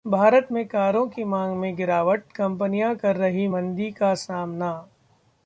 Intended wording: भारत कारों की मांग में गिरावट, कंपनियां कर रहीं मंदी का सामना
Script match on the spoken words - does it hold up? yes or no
no